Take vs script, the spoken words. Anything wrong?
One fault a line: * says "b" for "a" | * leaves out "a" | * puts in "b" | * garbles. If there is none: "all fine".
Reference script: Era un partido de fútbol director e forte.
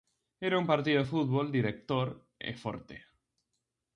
all fine